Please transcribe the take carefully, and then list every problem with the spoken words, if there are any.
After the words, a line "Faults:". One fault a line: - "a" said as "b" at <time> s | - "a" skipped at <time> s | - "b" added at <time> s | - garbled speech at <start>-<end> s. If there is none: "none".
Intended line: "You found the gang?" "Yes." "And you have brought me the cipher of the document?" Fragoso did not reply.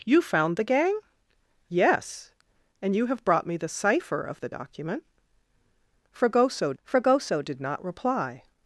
"You found the gang?" "Yes." "And you have brought me the cipher of the document?" Fragoso fragoso did not reply.
Faults:
- "fragoso" added at 6.8 s